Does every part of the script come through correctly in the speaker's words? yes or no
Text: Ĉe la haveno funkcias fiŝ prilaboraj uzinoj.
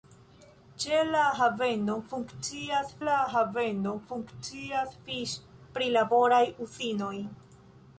no